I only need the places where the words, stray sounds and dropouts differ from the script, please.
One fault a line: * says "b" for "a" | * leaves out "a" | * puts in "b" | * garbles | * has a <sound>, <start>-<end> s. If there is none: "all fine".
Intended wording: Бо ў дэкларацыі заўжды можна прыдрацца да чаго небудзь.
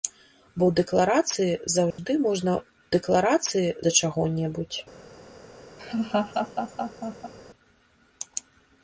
* has a dropout, 1.9-2.0 s
* says "дэкларацыі" for "прыдрацца"
* has a laugh, 5.8-7.3 s